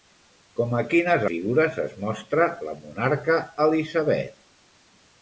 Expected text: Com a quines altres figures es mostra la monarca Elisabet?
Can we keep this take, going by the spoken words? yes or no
no